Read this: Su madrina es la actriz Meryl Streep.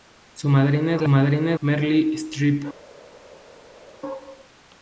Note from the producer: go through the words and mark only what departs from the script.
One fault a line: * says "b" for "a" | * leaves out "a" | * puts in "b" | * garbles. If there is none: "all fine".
* says "madrina" for "actriz"